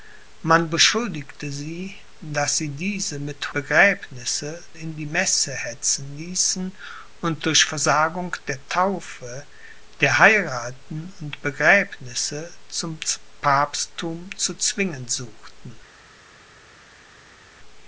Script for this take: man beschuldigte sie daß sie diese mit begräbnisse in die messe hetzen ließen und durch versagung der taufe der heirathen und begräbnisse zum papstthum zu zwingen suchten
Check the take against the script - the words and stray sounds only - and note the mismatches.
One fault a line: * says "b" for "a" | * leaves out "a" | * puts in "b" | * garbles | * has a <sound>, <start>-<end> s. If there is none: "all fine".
all fine